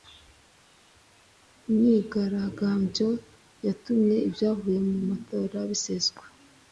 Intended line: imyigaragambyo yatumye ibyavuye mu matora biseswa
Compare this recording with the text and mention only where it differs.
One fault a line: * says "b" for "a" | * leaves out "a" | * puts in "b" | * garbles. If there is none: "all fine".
all fine